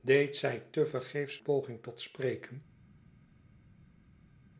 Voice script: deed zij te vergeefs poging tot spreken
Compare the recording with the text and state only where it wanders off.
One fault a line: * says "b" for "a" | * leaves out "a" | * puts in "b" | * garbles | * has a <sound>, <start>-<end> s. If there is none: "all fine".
all fine